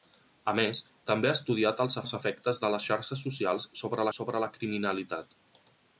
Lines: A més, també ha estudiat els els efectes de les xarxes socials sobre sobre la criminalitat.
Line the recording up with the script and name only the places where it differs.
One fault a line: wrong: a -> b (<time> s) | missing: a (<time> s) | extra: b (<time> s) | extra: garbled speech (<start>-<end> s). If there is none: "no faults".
no faults